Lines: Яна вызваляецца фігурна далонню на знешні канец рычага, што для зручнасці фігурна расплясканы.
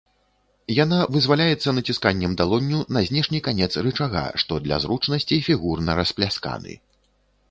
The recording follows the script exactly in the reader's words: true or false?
false